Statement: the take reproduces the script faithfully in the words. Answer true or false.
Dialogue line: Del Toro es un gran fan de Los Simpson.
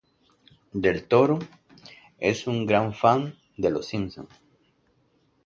true